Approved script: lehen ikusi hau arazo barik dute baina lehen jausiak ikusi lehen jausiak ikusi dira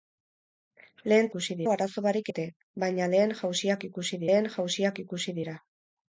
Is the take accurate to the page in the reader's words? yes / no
yes